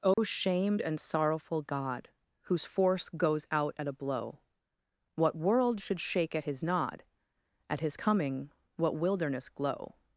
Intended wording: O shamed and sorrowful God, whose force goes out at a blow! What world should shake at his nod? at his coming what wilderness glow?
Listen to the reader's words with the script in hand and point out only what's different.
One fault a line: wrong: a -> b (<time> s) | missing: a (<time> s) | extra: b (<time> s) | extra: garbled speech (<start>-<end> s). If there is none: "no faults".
no faults